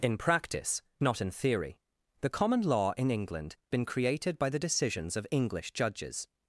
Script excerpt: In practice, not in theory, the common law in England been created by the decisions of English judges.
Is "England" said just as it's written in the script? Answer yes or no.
yes